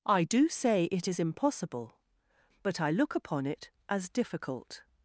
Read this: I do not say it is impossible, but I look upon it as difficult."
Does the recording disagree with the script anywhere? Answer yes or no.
yes